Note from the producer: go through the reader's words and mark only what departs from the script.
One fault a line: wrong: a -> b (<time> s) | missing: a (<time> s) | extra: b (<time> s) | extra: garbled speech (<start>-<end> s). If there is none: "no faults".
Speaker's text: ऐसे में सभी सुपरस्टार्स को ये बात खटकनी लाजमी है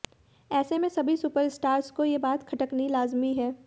no faults